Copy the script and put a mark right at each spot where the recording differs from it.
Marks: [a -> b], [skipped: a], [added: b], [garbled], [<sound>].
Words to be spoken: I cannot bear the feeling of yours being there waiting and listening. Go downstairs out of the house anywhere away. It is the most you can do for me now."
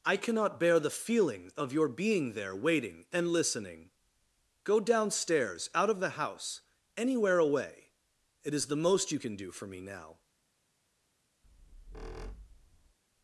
I cannot bear the feeling of [yours -> your] being there waiting and listening. Go downstairs out of the house anywhere away. It is the most you can do for me now." [squeak]